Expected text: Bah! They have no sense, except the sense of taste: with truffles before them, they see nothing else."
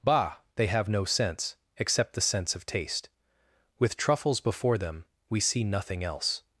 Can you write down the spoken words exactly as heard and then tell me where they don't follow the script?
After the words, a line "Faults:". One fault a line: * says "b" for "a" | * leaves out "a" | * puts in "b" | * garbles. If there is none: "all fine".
Bah! They have no sense, except the sense of taste: with truffles before them, we see nothing else."
Faults:
* says "we" for "they"